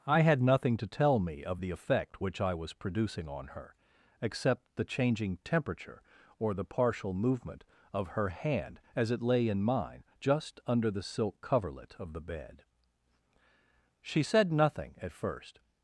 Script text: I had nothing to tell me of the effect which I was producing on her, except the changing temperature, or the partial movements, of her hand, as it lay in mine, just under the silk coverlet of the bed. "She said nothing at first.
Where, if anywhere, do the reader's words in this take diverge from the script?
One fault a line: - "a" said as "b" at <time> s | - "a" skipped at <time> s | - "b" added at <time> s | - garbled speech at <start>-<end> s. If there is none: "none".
- "movements" said as "movement" at 7.1 s